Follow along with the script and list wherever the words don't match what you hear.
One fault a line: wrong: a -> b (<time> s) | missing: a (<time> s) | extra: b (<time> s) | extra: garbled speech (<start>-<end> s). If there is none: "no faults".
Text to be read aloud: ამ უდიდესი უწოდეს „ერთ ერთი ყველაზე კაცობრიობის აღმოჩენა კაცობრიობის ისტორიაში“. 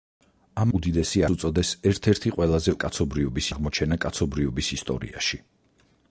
no faults